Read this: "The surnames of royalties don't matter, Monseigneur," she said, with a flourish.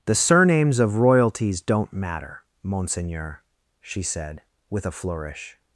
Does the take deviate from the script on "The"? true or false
false